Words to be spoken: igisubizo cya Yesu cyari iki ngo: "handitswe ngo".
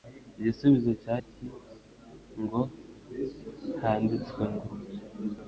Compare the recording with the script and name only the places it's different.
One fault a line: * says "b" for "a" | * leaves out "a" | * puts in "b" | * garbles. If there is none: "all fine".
* leaves out "Yesu cyari"